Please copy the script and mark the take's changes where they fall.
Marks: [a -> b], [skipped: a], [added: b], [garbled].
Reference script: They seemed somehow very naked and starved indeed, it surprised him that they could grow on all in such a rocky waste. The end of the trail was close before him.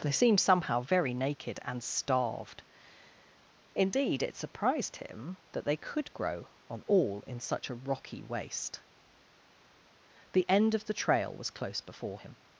They seemed somehow very naked and starved indeed, it surprised him that they could grow on all in such a rocky waste. The end of the trail was close before him.